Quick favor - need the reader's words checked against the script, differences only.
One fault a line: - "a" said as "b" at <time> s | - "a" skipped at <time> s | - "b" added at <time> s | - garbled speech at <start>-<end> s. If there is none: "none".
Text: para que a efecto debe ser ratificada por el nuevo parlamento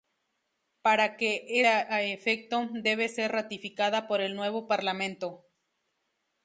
none